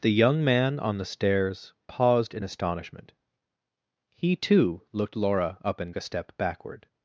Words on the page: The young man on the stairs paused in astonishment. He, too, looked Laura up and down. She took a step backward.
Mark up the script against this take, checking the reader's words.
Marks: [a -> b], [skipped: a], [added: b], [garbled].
The young man on the stairs paused in astonishment. He, too, looked Laura up and [skipped: down. She took] a step backward.